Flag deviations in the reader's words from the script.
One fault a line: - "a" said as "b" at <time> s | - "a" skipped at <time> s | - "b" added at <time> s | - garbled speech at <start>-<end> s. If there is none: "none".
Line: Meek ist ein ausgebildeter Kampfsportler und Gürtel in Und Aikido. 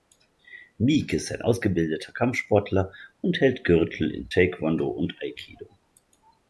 - "hält" added at 3.4 s
- "Taekwondo" added at 4.3 s